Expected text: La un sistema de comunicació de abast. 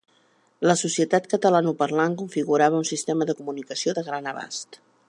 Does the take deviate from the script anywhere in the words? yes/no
yes